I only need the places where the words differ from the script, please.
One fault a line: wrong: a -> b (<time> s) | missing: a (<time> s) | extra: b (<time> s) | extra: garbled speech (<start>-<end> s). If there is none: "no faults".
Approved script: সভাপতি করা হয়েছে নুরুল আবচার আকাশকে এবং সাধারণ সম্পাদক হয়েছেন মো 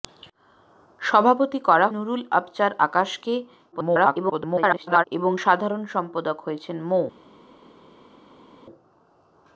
missing: হয়েছে (1.9 s)
extra: garbled speech (3.7-5.0 s)